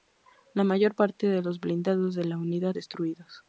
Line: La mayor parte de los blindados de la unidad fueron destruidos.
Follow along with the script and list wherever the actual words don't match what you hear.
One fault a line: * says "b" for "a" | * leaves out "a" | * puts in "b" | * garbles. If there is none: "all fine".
* leaves out "fueron"